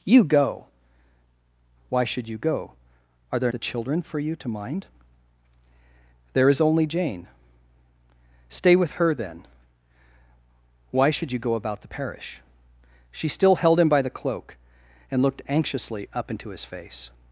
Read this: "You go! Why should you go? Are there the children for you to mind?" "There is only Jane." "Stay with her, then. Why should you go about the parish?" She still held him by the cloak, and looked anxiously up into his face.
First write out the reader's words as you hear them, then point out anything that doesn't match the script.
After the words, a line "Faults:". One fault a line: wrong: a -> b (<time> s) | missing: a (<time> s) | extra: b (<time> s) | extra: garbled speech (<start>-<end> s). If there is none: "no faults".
"You go! Why should you go? Are there the children for you to mind?" "There is only Jane." "Stay with her, then. Why should you go about the parish?" She still held him by the cloak, and looked anxiously up into his face.
Faults:
no faults